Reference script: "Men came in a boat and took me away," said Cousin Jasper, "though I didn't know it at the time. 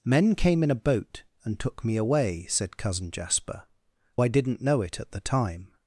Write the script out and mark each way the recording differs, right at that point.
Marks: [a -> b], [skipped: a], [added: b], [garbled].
"Men came in a boat and took me away," said Cousin Jasper, [skipped: "though] I didn't know it at the time.